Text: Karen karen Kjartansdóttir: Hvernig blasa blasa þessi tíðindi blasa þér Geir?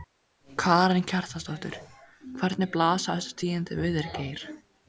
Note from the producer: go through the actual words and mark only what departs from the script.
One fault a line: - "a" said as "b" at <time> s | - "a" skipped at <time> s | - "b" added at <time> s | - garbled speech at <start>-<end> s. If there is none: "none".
- "karen" skipped at 1.0 s
- "blasa" skipped at 3.2 s
- "blasa" said as "við" at 3.8 s